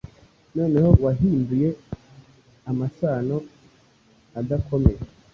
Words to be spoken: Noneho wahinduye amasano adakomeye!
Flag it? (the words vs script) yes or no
no